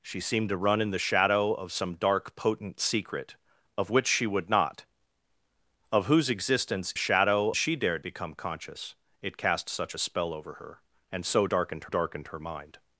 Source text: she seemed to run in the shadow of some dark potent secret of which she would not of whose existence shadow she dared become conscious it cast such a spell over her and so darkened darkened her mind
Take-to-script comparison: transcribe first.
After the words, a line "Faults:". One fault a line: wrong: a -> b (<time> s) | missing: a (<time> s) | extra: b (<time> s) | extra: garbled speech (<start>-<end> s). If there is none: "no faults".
she seemed to run in the shadow of some dark potent secret of which she would not of whose existence shadow she dared become conscious it cast such a spell over her and so darkened darkened her mind
Faults:
no faults